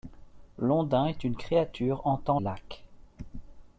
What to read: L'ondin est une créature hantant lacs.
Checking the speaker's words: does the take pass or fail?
pass